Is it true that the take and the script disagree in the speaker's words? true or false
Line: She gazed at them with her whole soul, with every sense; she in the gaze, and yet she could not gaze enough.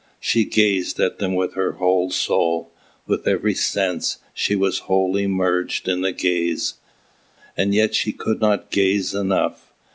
true